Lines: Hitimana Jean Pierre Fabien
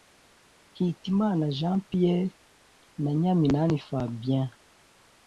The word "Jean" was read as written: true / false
true